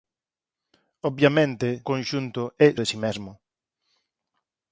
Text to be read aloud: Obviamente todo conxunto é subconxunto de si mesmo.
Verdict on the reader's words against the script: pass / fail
fail